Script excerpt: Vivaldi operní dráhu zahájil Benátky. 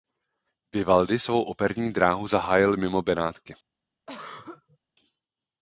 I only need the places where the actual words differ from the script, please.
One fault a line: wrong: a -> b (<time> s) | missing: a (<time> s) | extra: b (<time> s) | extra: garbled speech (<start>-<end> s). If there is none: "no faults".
extra: svou (1.2 s)
extra: mimo (2.8 s)